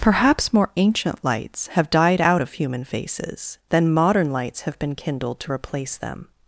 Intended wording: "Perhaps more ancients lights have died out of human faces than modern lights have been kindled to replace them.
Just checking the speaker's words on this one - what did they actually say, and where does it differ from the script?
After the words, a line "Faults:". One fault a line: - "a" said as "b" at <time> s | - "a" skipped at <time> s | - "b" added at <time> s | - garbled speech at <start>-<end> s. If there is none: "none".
"Perhaps more ancient lights have died out of human faces than modern lights have been kindled to replace them.
Faults:
- "ancients" said as "ancient" at 0.8 s